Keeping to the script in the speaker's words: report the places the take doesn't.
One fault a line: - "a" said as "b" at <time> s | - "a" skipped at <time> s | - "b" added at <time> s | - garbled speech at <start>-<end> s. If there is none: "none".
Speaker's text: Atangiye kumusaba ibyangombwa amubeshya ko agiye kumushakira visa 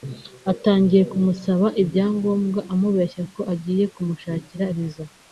none